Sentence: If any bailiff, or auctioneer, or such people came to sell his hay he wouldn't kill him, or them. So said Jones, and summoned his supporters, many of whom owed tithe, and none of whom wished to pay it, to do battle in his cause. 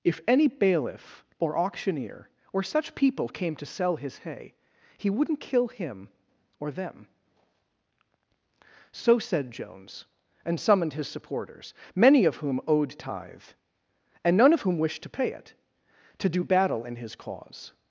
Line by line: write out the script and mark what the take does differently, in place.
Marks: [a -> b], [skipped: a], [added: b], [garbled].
If any bailiff, or auctioneer, or such people came to sell his hay he wouldn't kill him, or them. So said Jones, and summoned his supporters, many of whom owed tithe, and none of whom wished to pay it, to do battle in his cause.